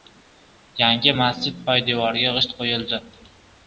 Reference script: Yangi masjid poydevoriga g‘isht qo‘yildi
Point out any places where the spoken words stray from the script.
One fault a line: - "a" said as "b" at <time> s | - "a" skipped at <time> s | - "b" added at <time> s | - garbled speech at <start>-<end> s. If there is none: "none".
none